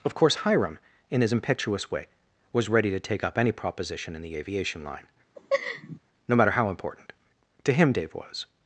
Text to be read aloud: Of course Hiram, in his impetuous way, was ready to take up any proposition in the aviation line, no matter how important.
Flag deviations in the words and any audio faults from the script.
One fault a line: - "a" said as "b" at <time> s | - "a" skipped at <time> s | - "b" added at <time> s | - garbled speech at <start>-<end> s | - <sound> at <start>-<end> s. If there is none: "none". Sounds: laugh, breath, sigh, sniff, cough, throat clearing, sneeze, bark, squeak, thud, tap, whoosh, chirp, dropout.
- laugh at 5.4-6.0 s
- "To him Dave was" added at 7.6 s